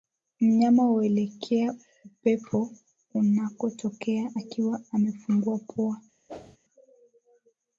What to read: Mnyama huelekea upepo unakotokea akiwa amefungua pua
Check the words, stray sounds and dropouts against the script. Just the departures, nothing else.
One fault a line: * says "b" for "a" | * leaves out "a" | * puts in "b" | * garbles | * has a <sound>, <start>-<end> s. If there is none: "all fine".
* has a whoosh, 6.3-6.6 s